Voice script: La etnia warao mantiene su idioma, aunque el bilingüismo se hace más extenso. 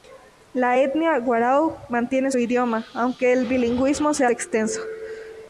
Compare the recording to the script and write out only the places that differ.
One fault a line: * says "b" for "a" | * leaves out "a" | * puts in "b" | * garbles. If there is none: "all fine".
* leaves out "su"
* leaves out "hace más"